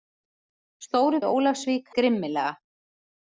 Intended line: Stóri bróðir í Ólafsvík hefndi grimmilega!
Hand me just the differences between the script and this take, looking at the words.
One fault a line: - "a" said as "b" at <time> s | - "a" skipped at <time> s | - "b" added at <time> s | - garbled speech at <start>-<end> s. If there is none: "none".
- "bróðir" skipped at 1.2 s
- "hefndi" skipped at 1.9 s